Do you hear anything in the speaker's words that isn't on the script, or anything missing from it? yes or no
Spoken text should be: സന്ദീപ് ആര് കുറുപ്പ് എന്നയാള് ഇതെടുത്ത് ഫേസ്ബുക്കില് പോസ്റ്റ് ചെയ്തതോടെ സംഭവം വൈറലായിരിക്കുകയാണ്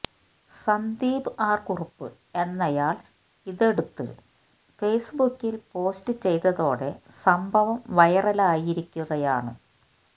no